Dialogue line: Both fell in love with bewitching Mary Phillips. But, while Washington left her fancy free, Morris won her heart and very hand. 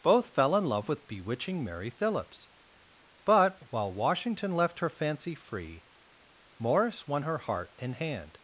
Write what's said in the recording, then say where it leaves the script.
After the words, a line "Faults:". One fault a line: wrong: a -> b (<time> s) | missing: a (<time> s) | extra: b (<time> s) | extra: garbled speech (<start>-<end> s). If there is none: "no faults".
Both fell in love with bewitching Mary Phillips. But, while Washington left her fancy free, Morris won her heart and hand.
Faults:
missing: very (8.0 s)